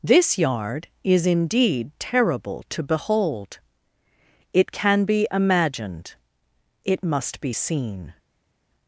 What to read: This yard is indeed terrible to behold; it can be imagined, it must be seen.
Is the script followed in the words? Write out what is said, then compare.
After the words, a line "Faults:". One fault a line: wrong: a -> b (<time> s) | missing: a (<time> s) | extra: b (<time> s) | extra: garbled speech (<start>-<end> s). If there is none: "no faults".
This yard is indeed terrible to behold; it can be imagined, it must be seen.
Faults:
no faults